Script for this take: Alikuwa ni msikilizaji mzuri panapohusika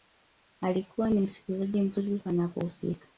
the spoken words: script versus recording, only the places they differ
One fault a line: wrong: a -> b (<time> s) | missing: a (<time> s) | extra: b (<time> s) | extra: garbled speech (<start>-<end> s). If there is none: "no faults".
no faults